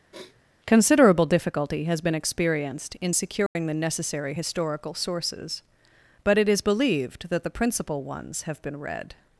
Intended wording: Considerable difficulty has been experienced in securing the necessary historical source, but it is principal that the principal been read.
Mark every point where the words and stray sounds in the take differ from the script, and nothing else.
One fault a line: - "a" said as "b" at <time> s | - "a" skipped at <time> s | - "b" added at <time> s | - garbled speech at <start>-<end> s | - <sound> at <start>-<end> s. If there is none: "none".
- sniff at 0.1-0.4 s
- dropout at 3.5-3.6 s
- "source" said as "sources" at 4.9 s
- "principal" said as "believed" at 6.6 s
- "ones have" added at 8.0 s